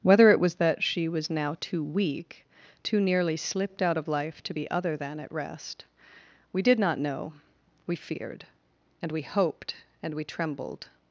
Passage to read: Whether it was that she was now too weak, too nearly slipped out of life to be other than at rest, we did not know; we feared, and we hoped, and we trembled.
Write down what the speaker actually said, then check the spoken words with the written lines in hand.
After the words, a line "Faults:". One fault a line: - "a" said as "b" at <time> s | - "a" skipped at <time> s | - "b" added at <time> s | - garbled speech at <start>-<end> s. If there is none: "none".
Whether it was that she was now too weak, too nearly slipped out of life to be other than at rest, we did not know; we feared, and we hoped, and we trembled.
Faults:
none